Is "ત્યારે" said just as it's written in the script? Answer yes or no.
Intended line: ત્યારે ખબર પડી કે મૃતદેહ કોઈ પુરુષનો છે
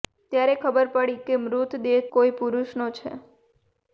yes